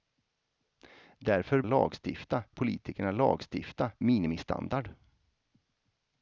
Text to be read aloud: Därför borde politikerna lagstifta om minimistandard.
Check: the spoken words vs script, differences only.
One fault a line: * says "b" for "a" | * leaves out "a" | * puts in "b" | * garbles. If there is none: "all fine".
* says "lagstifta" for "borde"
* leaves out "om"